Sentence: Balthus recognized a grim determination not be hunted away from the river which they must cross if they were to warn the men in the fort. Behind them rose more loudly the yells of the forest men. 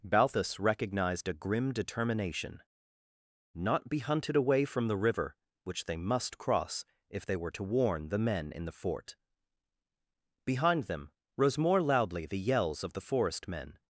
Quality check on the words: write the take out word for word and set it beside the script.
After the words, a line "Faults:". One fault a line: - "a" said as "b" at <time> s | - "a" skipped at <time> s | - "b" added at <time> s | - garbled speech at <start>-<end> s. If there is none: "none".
Balthus recognized a grim determination not be hunted away from the river which they must cross if they were to warn the men in the fort. Behind them rose more loudly the yells of the forest men.
Faults:
none